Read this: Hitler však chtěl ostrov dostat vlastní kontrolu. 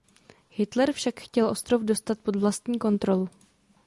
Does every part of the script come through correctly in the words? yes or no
no